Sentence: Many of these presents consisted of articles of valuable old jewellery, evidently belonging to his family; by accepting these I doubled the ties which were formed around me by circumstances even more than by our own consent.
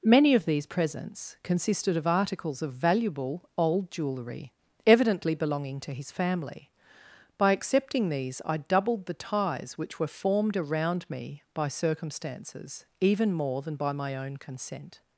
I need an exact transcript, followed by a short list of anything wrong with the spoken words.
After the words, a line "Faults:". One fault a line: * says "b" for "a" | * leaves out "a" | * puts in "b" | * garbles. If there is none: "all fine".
Many of these presents consisted of articles of valuable old jewellery, evidently belonging to his family; by accepting these I doubled the ties which were formed around me by circumstances even more than by my own consent.
Faults:
* says "my" for "our"